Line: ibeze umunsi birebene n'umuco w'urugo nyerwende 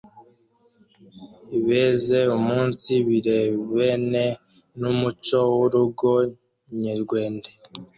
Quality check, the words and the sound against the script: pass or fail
pass